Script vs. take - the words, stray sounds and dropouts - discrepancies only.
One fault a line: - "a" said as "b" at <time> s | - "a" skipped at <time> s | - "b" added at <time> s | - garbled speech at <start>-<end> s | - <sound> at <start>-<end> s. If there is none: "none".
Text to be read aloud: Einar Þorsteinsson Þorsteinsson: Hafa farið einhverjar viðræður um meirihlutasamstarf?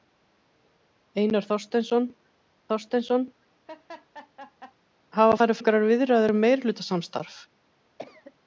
- laugh at 3.7-4.7 s
- cough at 8.0-8.3 s